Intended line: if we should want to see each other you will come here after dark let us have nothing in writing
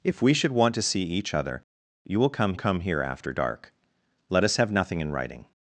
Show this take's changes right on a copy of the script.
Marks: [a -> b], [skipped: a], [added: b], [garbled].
if we should want to see each other you will come [added: come] here after dark let us have nothing in writing